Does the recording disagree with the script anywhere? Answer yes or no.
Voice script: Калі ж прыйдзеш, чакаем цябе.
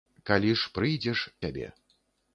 yes